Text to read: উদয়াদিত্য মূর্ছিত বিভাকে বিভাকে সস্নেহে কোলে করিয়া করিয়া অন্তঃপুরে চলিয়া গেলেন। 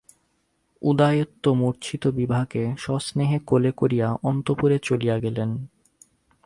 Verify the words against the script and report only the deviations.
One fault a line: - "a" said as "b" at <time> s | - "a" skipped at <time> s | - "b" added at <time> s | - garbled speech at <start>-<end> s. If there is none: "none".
- "বিভাকে" skipped at 2.6 s
- "করিয়া" skipped at 4.1 s